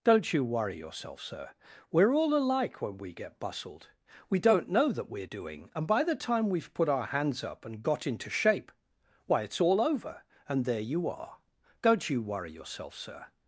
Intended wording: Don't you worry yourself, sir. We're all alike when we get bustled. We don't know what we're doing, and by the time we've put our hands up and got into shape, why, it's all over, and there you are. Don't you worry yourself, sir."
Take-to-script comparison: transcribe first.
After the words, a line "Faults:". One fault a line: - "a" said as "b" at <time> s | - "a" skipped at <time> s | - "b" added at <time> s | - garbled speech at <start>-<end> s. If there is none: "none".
Don't you worry yourself, sir. We're all alike when we get bustled. We don't know that we're doing, and by the time we've put our hands up and got into shape, why, it's all over, and there you are. Don't you worry yourself, sir."
Faults:
- "what" said as "that" at 4.9 s